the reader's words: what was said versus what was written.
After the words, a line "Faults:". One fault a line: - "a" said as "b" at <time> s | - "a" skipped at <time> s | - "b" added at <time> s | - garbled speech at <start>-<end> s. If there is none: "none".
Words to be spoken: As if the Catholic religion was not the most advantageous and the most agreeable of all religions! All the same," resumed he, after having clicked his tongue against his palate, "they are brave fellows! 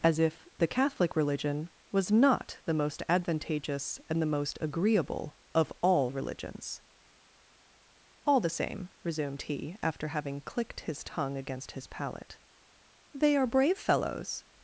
As if the Catholic religion was not the most advantageous and the most agreeable of all religions! All the same," resumed he, after having clicked his tongue against his palate, "they are brave fellows!
Faults:
none